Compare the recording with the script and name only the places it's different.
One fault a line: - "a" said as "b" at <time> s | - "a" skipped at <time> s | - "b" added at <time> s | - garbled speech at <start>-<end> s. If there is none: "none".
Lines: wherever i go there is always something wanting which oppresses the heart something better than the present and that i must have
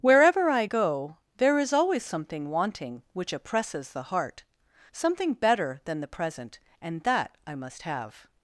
none